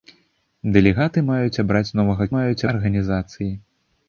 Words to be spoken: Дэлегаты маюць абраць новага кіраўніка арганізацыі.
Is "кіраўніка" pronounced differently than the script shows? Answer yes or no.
yes